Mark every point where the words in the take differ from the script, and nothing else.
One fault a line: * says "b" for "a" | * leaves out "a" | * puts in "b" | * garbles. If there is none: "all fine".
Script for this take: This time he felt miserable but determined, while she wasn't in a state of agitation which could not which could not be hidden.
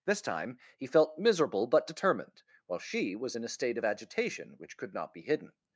* says "was" for "wasn't"
* leaves out "which could not"